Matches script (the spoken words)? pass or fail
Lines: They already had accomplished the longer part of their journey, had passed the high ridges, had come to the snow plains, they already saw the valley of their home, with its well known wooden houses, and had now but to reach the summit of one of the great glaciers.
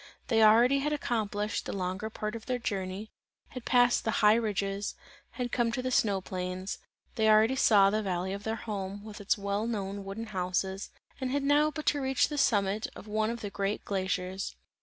pass